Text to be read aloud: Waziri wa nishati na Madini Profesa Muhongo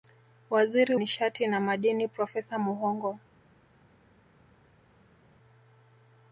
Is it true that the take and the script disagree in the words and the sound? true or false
true